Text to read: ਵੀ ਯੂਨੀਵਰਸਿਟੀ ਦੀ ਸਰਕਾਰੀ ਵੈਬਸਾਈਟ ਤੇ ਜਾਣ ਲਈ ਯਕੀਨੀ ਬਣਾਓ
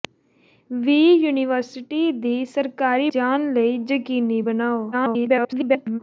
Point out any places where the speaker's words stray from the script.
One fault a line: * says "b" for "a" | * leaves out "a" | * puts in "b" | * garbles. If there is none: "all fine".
* leaves out "ਵੈਬਸਾਈਟ ਤੇ"
* garbles